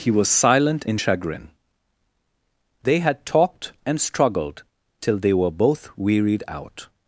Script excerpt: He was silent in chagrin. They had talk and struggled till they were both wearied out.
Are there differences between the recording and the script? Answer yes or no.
yes